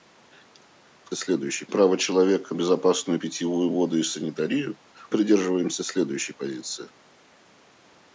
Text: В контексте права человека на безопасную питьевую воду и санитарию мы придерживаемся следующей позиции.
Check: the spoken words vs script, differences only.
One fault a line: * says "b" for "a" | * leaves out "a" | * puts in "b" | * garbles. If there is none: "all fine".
* says "следующей" for "контексте"
* leaves out "на"
* leaves out "мы"